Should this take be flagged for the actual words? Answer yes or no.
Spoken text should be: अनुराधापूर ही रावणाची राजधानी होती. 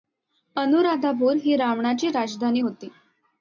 no